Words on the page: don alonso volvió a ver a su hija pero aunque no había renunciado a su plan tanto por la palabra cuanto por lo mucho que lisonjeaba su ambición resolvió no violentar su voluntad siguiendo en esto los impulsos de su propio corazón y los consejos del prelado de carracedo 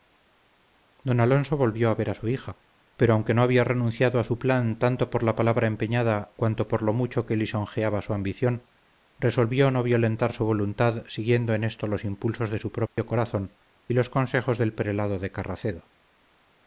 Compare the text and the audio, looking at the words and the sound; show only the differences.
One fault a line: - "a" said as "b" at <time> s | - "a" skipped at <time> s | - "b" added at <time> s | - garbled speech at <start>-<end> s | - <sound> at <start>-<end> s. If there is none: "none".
- "empeñada" added at 5.7 s
- dropout at 12.9-13.0 s